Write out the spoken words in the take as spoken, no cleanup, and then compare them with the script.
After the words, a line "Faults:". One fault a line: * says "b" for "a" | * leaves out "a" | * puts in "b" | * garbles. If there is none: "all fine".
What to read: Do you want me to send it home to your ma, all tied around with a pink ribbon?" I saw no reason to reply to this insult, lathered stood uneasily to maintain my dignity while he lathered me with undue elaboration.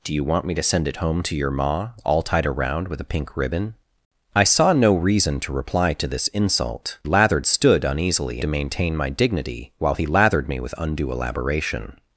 Do you want me to send it home to your ma, all tied around with a pink ribbon?" I saw no reason to reply to this insult, lathered stood uneasily to maintain my dignity while he lathered me with undue elaboration.
Faults:
all fine